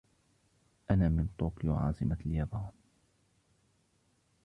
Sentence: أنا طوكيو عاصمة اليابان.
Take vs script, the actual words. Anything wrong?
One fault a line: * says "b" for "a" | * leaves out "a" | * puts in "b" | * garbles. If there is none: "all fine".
* puts in "من"